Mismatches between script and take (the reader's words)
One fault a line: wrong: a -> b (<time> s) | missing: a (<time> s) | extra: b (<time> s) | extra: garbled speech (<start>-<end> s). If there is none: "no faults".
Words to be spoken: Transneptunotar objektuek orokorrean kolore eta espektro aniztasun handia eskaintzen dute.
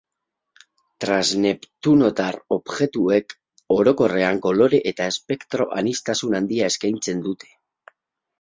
no faults